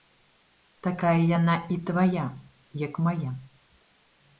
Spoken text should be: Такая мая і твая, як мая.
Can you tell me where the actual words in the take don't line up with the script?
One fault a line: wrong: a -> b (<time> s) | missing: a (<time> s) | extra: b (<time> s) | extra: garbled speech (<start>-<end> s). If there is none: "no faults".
wrong: мая -> яна (1.4 s)